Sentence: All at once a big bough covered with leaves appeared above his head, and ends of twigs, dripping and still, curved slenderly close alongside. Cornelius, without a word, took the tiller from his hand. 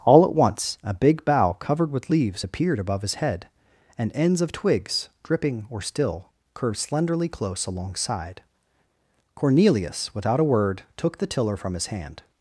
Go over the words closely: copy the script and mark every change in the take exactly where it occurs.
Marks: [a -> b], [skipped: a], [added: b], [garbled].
All at once a big bough covered with leaves appeared above his head, and ends of twigs, dripping [and -> or] still, curved slenderly close alongside. Cornelius, without a word, took the tiller from his hand.